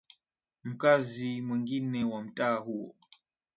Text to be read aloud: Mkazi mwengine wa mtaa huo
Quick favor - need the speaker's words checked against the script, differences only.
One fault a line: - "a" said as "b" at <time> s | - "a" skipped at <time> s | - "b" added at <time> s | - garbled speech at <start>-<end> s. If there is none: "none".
none